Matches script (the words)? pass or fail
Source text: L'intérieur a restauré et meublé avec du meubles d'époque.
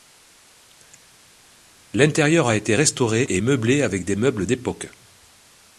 fail